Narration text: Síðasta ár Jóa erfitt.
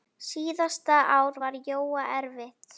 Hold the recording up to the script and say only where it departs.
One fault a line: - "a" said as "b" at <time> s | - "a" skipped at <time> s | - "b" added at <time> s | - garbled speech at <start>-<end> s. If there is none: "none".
- "var" added at 1.4 s